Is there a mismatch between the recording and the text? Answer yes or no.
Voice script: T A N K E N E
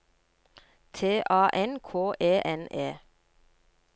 no